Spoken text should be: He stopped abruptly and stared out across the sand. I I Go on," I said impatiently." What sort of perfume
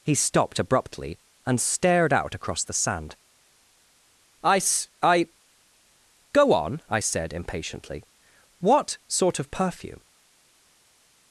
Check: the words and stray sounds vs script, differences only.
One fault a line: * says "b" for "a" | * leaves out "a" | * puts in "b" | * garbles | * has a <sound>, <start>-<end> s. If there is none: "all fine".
* puts in "s"